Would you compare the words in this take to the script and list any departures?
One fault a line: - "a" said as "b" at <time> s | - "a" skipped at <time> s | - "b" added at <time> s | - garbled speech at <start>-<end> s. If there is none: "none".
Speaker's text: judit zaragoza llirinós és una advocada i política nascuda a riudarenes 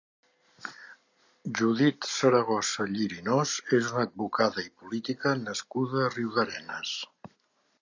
none